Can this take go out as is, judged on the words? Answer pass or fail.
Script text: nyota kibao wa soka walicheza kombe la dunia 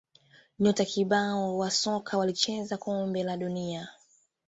pass